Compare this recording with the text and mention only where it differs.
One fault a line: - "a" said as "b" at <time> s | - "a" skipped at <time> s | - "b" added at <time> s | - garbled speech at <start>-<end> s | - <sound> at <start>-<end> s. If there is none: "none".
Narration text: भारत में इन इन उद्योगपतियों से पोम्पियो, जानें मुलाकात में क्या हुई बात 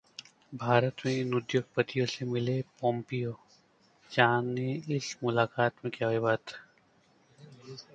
- "इन" skipped at 1.3 s
- "मिले" added at 2.2 s
- "इस" added at 5.0 s